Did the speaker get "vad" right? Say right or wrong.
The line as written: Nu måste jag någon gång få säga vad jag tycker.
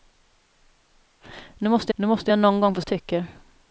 wrong